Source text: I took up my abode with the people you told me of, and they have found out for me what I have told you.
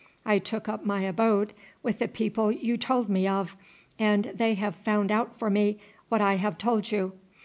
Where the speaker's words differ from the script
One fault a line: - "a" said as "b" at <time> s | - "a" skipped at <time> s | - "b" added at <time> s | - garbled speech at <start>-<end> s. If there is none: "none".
none